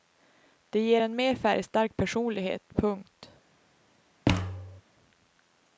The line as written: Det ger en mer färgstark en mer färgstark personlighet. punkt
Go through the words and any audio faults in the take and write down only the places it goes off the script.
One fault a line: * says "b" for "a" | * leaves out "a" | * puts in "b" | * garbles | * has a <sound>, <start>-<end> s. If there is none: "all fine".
* leaves out "en mer färgstark"
* has a thud, 4.3-4.8 s